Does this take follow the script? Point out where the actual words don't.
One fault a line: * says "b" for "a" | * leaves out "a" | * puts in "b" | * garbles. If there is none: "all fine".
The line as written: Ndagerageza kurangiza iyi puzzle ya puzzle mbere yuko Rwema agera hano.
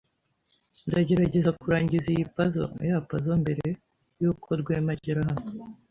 all fine